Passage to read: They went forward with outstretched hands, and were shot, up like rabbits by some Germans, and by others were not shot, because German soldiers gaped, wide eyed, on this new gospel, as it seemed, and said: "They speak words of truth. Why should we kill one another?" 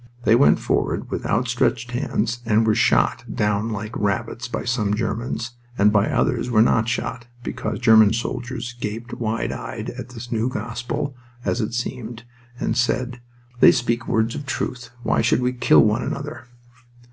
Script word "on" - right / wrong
wrong